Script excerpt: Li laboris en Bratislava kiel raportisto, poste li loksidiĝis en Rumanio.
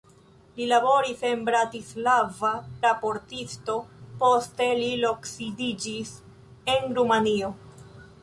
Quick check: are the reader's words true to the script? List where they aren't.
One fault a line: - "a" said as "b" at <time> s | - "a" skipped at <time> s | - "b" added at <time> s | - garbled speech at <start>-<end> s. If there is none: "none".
- "kiel" skipped at 2.5 s